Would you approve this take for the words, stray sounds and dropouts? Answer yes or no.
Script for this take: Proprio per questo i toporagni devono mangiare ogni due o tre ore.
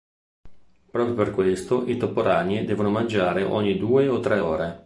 yes